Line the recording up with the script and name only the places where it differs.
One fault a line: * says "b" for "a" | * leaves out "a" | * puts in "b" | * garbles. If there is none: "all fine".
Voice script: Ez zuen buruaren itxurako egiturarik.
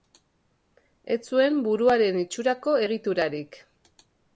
all fine